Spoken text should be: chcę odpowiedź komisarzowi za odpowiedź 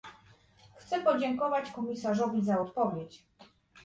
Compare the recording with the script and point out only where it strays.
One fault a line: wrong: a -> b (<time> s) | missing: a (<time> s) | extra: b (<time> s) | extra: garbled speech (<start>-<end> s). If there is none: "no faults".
wrong: odpowiedź -> podziękować (1.0 s)